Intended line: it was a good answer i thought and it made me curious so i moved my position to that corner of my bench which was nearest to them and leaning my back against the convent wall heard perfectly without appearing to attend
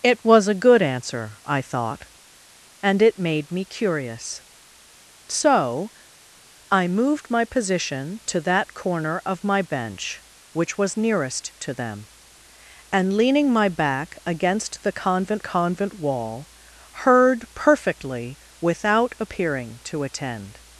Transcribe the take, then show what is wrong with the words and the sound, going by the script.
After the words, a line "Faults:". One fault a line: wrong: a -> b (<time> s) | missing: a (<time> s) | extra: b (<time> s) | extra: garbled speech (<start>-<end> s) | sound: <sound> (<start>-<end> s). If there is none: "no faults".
it was a good answer i thought and it made me curious so i moved my position to that corner of my bench which was nearest to them and leaning my back against the convent convent wall heard perfectly without appearing to attend
Faults:
extra: convent (15.4 s)